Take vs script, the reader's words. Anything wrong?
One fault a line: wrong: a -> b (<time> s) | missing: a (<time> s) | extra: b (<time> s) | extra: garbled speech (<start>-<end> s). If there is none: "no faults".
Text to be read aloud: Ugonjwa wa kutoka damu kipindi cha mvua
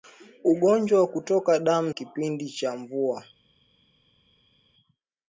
no faults